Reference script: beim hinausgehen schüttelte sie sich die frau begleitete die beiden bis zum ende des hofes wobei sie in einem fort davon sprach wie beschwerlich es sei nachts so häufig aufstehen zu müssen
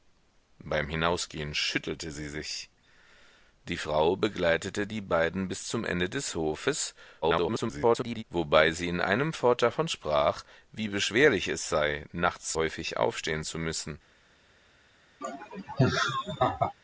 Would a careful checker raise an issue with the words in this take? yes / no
yes